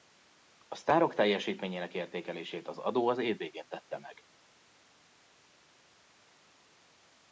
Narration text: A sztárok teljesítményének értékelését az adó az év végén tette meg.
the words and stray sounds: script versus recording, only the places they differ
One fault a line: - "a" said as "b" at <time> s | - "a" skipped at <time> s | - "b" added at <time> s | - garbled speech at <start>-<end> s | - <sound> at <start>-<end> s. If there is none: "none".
none